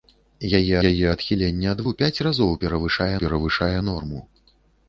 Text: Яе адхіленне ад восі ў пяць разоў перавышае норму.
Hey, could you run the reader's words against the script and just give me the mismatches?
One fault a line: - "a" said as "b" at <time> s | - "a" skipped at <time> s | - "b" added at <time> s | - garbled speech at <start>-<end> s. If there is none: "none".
- "яе" added at 0.9 s
- "восі" skipped at 1.8 s
- "перавышае" added at 3.2 s